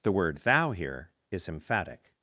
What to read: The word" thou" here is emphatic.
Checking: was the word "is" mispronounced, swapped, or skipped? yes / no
no